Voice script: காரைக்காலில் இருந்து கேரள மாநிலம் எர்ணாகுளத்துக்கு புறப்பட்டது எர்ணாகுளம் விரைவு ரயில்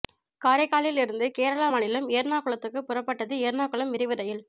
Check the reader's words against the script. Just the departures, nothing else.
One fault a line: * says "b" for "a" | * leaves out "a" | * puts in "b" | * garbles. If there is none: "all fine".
all fine